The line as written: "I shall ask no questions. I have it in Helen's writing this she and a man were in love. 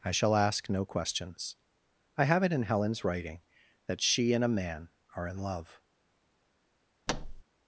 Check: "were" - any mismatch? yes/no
yes